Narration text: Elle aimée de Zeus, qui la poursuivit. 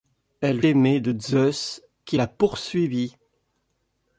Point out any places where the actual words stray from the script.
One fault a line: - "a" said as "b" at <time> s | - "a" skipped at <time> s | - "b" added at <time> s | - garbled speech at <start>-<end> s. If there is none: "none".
none